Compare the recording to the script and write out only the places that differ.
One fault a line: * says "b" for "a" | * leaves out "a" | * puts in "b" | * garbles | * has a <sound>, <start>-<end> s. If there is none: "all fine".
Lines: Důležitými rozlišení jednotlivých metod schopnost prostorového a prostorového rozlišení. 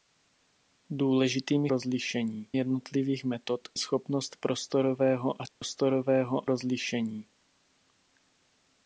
* has a dropout, 5.5-5.6 s